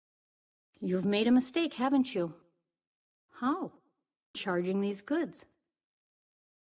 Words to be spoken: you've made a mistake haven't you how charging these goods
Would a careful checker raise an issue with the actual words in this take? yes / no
no